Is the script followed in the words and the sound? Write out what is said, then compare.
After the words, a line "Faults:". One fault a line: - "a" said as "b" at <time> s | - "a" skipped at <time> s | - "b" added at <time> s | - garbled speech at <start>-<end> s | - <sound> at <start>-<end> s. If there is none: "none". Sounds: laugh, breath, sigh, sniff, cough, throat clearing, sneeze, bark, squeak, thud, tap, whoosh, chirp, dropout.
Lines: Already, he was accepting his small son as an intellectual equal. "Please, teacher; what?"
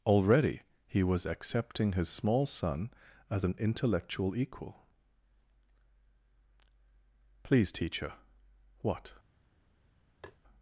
Already, he was accepting his small son as an intellectual equal. "Please, teacher; what?"
Faults:
- tap at 10.2-10.4 s